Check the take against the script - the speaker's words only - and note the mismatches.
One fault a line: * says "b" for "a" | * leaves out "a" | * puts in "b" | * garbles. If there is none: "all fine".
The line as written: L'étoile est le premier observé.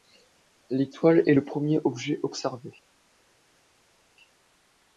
* puts in "objet"